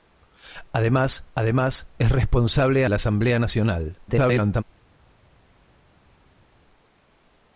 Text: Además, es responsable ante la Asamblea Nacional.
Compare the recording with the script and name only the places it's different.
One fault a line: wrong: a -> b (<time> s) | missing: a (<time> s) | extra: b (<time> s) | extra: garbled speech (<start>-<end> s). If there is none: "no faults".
extra: además (1.3 s)
missing: ante (2.8 s)
extra: garbled speech (4.1-4.6 s)